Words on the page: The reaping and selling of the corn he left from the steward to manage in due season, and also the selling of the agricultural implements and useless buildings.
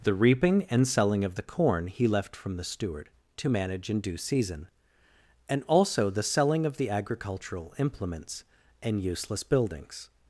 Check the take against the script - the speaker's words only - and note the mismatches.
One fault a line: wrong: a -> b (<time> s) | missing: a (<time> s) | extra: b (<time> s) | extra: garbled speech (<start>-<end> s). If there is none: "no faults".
no faults